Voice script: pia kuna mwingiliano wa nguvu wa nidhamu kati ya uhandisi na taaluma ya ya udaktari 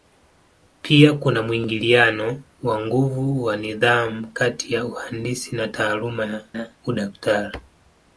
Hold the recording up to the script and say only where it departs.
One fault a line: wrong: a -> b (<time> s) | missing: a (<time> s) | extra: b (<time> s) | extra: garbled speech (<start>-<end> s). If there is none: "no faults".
no faults